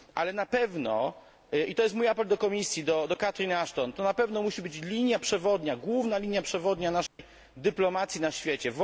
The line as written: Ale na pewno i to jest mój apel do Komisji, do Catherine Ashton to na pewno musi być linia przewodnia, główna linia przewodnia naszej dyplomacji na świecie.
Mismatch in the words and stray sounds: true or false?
true